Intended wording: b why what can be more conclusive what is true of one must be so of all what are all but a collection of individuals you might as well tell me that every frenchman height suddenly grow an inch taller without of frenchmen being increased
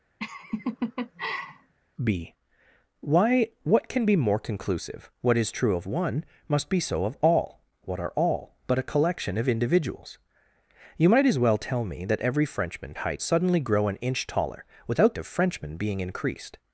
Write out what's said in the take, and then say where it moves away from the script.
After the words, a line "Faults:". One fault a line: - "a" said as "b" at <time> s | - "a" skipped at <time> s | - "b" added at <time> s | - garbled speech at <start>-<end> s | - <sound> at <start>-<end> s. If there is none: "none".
b why what can be more conclusive what is true of one must be so of all what are all but a collection of individuals you might as well tell me that every frenchman height suddenly grow an inch taller without of frenchmen being increased
Faults:
- laugh at 0.2-1.7 s